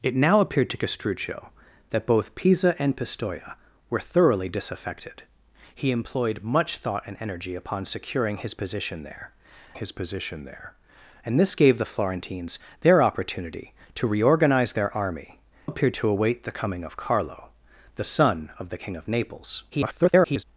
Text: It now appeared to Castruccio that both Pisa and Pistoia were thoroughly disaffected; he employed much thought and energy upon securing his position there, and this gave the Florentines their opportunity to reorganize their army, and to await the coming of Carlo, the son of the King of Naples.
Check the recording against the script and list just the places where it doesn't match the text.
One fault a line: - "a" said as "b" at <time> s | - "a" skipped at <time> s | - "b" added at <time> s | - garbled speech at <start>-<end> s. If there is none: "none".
- "his position there" added at 9.7 s
- "and" said as "appeared" at 15.6 s
- garbled speech at 19.7-20.4 s